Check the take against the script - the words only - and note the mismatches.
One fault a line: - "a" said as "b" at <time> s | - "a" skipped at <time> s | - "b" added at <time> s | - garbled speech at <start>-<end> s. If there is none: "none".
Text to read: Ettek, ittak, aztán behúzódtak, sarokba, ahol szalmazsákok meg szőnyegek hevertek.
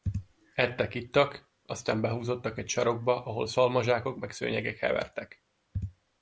- "egy" added at 2.6 s